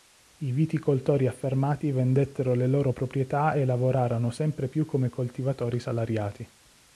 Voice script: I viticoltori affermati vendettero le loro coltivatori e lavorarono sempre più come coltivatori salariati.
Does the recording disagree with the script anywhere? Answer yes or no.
yes